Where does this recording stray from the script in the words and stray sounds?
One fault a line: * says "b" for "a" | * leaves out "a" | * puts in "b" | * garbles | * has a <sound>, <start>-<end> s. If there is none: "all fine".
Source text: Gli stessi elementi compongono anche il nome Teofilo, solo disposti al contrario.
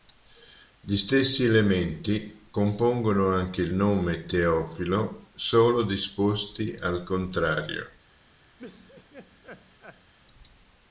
* has a laugh, 8.6-10.1 s